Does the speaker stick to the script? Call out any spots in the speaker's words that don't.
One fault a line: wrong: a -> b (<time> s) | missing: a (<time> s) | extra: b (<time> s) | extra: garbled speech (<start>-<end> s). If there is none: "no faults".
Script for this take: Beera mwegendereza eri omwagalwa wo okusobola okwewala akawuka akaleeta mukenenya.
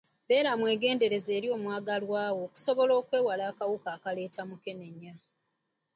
no faults